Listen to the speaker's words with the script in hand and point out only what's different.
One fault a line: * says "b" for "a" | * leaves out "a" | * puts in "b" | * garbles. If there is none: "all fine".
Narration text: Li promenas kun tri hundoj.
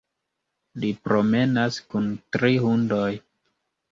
all fine